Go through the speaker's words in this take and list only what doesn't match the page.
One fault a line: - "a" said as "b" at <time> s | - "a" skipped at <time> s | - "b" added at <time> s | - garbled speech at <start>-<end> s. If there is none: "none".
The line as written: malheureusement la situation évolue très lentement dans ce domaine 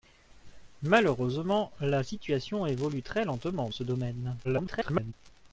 - "dans" skipped at 3.7 s
- garbled speech at 4.4-5.1 s